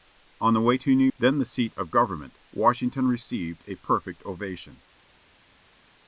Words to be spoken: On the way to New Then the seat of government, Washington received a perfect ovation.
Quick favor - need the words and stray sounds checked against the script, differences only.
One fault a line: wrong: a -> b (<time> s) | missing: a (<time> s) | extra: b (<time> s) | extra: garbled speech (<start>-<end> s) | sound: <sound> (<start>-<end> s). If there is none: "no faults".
no faults